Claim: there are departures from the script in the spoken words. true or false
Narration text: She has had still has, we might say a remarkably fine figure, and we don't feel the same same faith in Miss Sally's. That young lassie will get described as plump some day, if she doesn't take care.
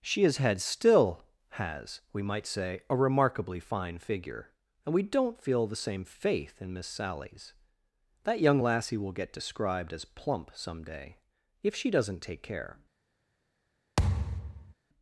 true